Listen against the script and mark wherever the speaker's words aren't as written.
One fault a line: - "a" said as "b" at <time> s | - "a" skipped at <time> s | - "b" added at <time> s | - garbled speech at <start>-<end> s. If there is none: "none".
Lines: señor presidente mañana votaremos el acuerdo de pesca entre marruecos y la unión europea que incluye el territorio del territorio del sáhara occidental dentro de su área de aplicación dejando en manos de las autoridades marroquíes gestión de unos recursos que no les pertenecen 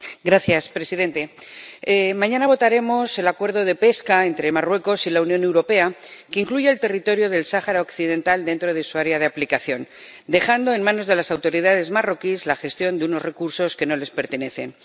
- "territorio del" skipped at 7.4 s
- "la" added at 12.5 s